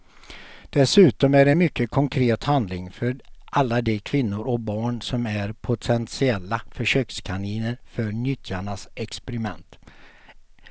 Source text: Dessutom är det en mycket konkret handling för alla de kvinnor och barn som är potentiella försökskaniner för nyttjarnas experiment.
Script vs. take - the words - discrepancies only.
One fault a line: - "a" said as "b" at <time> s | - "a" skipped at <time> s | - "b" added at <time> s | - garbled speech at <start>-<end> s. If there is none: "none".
none